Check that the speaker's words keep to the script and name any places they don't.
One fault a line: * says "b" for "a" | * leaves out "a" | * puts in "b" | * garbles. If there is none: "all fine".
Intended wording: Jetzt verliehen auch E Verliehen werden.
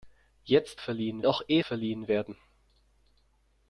all fine